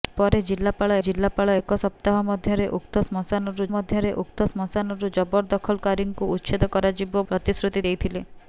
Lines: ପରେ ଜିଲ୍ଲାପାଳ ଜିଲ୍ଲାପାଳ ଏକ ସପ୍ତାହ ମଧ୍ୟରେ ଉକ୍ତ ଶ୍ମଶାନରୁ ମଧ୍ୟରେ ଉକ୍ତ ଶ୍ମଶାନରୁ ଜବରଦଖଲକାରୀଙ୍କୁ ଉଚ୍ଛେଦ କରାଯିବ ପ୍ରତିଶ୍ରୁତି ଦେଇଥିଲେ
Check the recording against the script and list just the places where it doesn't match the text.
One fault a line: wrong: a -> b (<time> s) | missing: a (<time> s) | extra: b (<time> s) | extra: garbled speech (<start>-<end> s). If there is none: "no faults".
no faults